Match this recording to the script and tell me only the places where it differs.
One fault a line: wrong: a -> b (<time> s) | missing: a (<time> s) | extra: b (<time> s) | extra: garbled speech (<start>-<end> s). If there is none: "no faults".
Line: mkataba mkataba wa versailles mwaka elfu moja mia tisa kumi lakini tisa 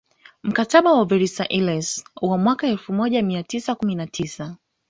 missing: mkataba (0.9 s)
extra: wa (2.2 s)
wrong: lakini -> na (3.9 s)